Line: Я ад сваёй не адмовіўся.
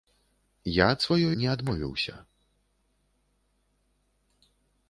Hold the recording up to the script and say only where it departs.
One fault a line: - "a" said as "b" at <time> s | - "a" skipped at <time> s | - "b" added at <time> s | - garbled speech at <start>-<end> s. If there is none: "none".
none